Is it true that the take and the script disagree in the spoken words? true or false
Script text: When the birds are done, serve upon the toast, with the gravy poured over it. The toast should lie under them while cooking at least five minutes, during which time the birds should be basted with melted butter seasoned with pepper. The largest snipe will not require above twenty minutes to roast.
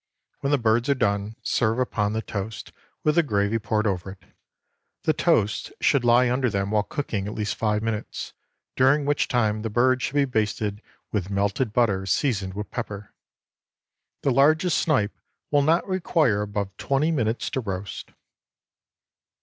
false